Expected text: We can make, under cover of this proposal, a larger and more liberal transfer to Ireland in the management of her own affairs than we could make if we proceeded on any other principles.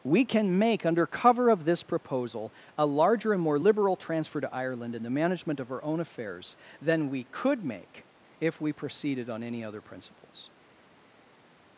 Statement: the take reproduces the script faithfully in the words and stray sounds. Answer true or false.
false